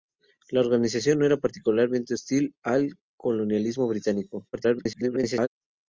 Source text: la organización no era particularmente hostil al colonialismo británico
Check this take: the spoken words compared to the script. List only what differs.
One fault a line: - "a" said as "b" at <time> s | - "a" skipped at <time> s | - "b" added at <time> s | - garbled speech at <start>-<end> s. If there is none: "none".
- garbled speech at 4.5-5.5 s